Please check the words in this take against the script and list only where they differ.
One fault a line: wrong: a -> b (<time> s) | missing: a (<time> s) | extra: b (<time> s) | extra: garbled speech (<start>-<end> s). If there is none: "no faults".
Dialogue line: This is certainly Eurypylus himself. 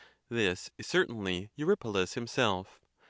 no faults